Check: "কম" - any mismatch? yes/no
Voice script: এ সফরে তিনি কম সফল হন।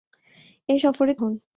yes